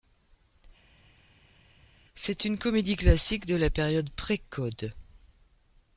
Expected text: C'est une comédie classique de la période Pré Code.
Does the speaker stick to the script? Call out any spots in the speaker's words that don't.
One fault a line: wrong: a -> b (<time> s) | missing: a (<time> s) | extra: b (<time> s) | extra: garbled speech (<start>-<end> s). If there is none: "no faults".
no faults